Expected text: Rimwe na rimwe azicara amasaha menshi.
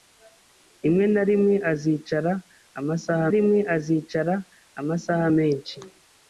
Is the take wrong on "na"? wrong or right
right